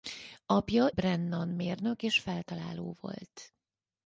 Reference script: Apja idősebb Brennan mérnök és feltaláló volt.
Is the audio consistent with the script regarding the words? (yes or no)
no